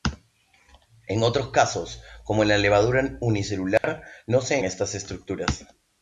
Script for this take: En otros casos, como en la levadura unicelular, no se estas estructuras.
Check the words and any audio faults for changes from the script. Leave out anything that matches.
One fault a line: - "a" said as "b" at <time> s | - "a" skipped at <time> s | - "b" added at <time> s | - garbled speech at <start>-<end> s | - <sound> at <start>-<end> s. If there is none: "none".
- dropout at 3.8-3.8 s